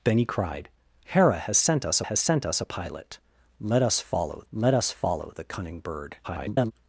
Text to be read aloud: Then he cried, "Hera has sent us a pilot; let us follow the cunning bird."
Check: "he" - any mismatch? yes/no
no